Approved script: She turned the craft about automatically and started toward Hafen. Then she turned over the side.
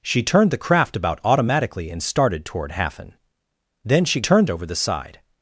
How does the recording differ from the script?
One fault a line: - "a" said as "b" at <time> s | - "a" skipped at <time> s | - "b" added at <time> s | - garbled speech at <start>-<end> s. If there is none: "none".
none